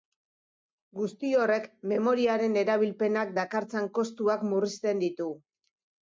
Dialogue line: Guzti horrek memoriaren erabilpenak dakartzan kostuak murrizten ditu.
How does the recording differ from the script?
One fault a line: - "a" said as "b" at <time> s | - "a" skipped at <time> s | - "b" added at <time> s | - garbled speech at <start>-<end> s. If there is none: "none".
none